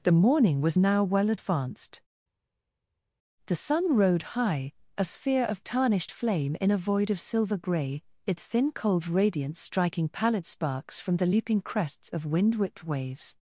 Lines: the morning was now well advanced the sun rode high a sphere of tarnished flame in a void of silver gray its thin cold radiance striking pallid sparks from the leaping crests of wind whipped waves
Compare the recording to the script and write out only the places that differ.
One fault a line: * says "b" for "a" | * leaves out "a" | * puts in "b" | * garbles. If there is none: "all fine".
all fine